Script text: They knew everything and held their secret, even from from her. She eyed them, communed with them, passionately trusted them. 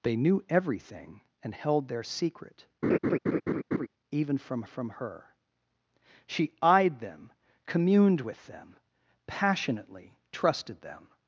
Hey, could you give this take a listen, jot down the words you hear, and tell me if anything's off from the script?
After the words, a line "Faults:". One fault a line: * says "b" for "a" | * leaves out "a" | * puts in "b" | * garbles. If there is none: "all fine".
They knew everything and held their secret, even from from her. She eyed them, communed with them, passionately trusted them.
Faults:
all fine